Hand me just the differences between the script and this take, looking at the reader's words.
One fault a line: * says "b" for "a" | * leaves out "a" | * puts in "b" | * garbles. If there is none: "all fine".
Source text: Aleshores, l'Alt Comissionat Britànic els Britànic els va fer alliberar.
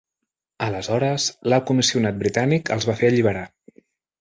* leaves out "Britànic els"